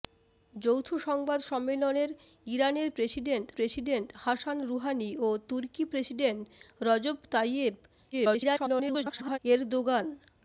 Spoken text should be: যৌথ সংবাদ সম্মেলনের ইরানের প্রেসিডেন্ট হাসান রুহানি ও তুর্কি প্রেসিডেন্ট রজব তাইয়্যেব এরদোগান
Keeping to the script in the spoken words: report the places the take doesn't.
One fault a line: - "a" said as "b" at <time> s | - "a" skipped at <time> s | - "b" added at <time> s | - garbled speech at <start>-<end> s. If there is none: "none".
- "প্রেসিডেন্ট" added at 3.5 s
- garbled speech at 8.1-9.4 s